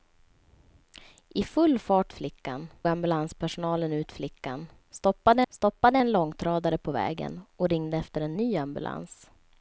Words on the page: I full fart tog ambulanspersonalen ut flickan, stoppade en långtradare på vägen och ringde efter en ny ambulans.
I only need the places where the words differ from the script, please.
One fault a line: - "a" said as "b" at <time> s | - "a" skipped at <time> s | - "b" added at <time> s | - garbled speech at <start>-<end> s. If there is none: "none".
- "tog" said as "flickan" at 2.1 s
- "stoppade" added at 5.5 s